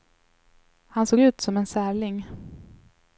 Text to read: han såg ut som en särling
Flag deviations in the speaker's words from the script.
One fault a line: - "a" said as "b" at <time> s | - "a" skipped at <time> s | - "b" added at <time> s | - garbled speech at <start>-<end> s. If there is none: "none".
none